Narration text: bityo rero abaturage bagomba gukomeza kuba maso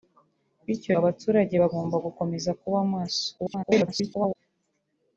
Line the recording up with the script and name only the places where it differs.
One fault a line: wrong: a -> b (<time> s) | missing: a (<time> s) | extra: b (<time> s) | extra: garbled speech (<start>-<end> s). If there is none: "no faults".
missing: rero (0.9 s)
extra: garbled speech (3.4-4.4 s)